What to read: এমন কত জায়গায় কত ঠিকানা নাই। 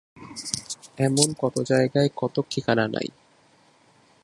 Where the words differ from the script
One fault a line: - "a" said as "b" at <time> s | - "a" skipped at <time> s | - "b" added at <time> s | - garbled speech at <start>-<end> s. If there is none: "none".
none